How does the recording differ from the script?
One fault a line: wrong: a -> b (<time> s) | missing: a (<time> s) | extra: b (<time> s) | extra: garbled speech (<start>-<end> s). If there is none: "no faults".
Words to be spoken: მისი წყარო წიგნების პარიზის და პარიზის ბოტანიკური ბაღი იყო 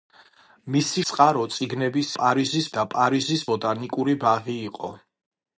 no faults